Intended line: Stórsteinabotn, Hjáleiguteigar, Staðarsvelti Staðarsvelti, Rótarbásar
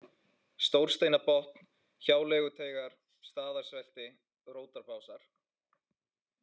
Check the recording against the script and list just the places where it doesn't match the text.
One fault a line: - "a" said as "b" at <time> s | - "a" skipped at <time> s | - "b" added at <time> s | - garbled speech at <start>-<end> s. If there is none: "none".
- "Staðarsvelti" skipped at 4.1 s